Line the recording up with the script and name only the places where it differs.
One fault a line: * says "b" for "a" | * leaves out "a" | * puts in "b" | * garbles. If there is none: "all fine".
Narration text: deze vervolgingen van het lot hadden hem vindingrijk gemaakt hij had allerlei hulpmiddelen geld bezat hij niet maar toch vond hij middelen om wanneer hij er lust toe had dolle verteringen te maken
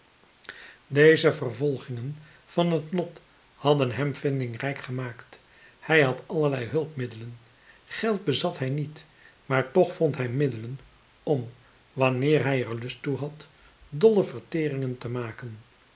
all fine